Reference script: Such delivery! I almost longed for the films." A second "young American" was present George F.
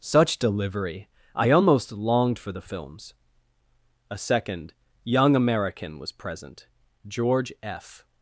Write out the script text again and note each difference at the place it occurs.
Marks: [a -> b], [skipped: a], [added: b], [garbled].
Such delivery! I almost longed for the films." A second "young American" was present George F.